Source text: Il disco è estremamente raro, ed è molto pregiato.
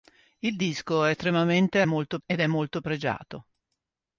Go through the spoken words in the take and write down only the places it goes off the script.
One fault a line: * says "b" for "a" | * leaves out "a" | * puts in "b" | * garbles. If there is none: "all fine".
* says "molto" for "raro"